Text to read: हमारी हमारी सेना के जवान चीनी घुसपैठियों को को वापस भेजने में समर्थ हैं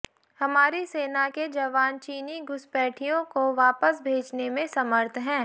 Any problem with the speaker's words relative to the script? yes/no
yes